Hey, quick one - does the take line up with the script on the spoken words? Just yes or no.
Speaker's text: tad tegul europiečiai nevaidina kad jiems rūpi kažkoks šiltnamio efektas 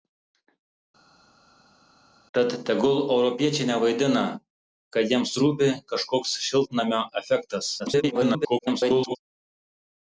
no